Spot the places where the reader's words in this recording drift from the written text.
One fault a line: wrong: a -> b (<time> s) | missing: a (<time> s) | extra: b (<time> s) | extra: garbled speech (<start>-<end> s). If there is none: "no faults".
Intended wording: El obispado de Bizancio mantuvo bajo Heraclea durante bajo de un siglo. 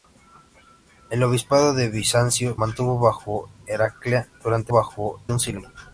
no faults